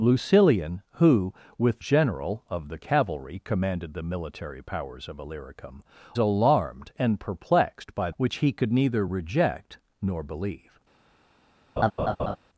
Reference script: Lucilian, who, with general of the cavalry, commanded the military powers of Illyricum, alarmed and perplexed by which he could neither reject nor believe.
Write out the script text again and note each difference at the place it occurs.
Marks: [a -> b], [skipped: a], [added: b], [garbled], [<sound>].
Lucilian, who, with general of the cavalry, commanded the military powers of Illyricum, alarmed and perplexed by which he could neither reject nor believe. [laugh]